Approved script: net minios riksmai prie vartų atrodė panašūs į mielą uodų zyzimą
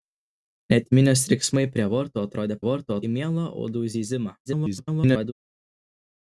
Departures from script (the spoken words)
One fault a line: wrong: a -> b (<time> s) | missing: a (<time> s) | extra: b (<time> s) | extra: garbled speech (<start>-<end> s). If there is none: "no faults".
wrong: panašūs -> vartų (2.7 s)
extra: garbled speech (4.5-5.3 s)